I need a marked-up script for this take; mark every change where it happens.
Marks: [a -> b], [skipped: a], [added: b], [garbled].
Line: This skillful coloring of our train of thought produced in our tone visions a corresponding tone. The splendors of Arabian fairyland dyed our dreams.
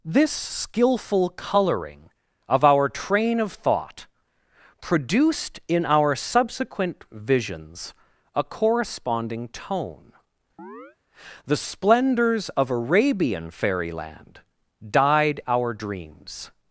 This skillful coloring of our train of thought produced in our [tone -> subsequent] visions a corresponding tone. The splendors of Arabian fairyland dyed our dreams.